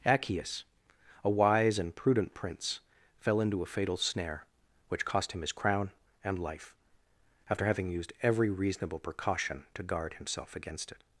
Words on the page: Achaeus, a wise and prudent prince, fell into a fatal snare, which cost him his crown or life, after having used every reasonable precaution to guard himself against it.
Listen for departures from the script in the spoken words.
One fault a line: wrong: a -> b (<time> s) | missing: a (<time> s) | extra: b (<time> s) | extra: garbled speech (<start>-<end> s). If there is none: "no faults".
wrong: or -> and (6.2 s)